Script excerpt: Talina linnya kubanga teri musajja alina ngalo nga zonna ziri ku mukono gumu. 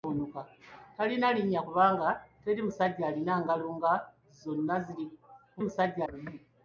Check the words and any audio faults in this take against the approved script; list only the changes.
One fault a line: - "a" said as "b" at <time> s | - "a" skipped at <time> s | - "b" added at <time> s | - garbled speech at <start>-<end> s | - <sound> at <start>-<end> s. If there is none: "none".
- "mukono" said as "musajja" at 5.7 s